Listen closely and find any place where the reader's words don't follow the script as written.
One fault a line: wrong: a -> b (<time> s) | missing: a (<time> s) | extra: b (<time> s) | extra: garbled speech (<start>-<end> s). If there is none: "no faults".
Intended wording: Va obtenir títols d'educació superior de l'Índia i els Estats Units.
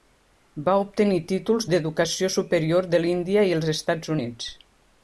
no faults